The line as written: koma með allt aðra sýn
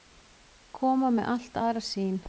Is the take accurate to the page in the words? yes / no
yes